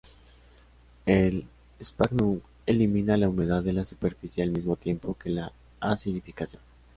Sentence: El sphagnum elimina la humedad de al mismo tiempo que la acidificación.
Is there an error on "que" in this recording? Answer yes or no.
no